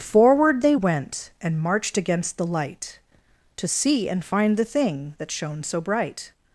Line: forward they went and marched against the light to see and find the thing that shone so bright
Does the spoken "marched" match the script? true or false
true